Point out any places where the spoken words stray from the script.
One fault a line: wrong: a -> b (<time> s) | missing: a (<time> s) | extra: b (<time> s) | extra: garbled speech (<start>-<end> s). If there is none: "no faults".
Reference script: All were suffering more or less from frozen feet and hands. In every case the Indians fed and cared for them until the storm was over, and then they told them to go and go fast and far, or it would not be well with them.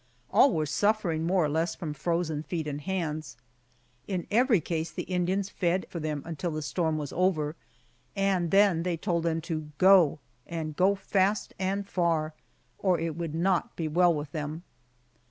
missing: and cared (5.8 s)